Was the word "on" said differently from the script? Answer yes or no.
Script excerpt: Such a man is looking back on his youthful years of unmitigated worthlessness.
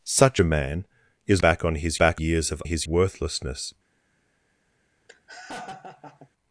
no